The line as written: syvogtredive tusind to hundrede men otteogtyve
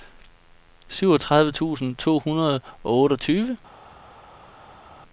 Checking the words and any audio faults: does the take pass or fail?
fail